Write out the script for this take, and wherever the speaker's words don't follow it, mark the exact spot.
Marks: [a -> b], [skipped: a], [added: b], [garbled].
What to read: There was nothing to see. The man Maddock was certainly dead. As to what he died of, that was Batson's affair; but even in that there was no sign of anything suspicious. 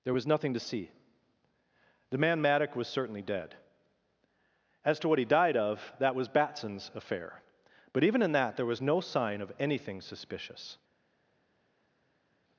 There was nothing to see. The man Maddock was certainly dead. As to what he died of, that was Batson's affair; but even in that there was no sign of anything suspicious.